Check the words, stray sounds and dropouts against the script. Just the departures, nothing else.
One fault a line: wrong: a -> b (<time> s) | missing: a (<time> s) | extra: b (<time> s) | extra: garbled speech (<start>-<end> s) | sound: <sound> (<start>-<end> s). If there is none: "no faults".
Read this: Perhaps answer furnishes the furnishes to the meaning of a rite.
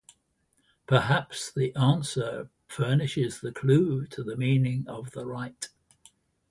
extra: the (1.5 s)
wrong: furnishes -> clue (3.5 s)
wrong: a -> the (5.1 s)